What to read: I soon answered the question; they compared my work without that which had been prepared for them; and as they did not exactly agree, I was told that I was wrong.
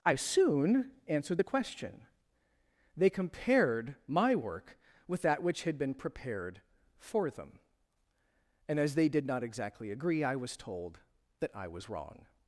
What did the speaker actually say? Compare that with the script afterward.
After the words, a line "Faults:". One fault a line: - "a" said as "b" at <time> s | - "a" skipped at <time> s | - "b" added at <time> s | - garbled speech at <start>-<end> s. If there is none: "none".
I soon answered the question; they compared my work with that which had been prepared for them; and as they did not exactly agree, I was told that I was wrong.
Faults:
- "without" said as "with" at 5.1 s